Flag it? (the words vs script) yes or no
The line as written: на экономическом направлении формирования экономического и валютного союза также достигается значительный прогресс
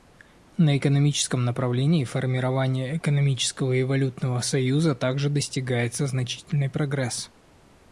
no